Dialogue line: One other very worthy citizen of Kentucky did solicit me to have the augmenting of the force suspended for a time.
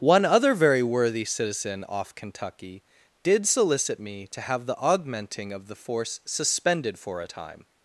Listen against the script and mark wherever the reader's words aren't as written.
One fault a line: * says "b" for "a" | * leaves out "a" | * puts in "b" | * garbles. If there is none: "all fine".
* says "off" for "of"